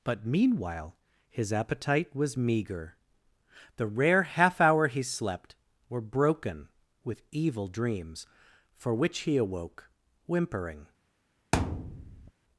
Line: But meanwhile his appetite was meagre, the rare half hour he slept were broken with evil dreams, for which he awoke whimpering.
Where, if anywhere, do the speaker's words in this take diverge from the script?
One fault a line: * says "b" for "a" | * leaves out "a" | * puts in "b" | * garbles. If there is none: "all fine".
all fine